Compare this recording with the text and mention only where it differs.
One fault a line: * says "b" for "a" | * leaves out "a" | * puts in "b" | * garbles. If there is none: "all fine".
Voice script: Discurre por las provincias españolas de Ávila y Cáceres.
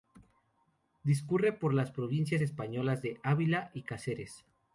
all fine